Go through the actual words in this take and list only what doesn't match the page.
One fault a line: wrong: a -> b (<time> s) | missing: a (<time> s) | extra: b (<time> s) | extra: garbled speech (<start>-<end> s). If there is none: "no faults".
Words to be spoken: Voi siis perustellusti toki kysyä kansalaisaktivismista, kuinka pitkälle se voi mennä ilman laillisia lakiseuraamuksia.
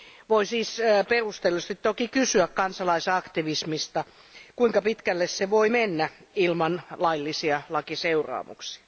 no faults